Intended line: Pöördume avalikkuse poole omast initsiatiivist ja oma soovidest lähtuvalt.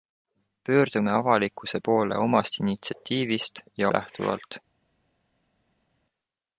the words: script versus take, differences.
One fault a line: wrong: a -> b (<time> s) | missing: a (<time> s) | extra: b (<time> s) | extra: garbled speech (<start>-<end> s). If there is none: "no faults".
missing: oma soovidest (3.9 s)